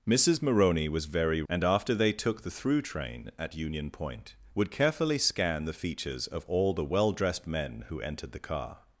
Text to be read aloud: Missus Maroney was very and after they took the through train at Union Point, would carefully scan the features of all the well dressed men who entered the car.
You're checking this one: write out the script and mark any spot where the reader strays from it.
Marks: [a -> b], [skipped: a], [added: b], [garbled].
Missus Maroney was very and after they took the through train at Union Point, would carefully scan the features of all the well dressed men who entered the car.